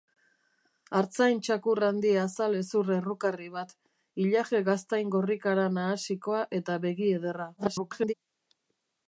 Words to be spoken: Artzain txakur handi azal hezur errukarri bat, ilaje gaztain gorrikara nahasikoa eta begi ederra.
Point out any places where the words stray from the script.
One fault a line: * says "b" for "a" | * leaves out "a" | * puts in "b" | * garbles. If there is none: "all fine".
* garbles